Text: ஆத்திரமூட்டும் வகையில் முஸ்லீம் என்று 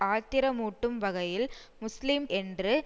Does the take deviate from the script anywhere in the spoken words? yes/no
no